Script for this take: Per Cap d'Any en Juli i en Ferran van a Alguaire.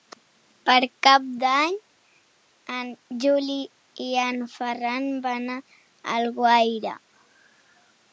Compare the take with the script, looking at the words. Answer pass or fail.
pass